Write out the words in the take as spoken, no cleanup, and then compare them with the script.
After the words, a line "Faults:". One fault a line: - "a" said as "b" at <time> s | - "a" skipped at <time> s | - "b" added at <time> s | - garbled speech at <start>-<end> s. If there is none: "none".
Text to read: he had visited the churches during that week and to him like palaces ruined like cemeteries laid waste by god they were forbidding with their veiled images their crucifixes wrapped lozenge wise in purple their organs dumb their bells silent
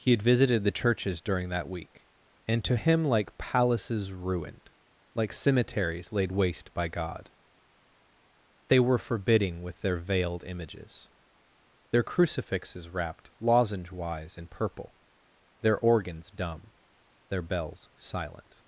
he had visited the churches during that week and to him like palaces ruined like cemeteries laid waste by god they were forbidding with their veiled images their crucifixes wrapped lozenge wise in purple their organs dumb their bells silent
Faults:
none